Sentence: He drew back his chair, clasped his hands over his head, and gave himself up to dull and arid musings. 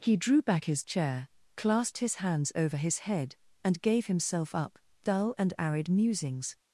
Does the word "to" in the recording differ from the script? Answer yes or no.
yes